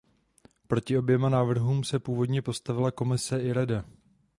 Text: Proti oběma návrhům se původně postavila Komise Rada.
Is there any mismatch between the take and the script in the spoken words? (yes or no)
yes